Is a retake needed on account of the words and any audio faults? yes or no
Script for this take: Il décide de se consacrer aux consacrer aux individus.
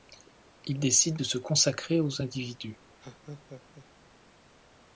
yes